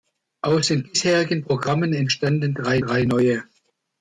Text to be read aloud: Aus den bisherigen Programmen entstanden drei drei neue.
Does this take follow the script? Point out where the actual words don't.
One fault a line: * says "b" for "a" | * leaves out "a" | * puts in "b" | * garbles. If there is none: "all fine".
all fine